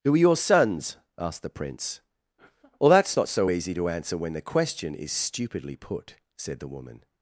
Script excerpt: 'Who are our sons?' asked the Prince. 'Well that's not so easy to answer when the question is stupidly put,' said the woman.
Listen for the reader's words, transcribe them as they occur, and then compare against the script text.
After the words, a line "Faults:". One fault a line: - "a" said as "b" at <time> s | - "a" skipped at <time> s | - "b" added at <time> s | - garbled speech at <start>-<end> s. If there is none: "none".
'Who are your sons?' asked the Prince. 'Well that's not so easy to answer when the question is stupidly put,' said the woman.
Faults:
- "our" said as "your" at 0.2 s